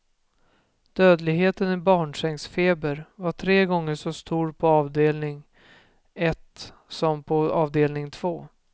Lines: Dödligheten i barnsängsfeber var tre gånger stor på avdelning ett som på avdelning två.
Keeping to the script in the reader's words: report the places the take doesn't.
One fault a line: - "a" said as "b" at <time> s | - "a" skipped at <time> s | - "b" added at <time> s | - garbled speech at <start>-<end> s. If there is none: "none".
- "så" added at 4.0 s